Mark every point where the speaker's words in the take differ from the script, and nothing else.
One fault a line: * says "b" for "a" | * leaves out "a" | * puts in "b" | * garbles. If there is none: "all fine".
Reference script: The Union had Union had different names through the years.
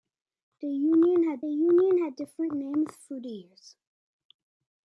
all fine